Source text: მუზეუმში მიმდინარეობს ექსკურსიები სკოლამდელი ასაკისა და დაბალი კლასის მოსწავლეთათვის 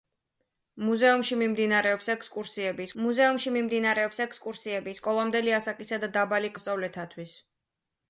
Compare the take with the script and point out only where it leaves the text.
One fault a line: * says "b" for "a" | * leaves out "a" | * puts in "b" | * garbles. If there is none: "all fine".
* puts in "მუზეუმში მიმდინარეობს ექსკურსიები"
* leaves out "კლასის"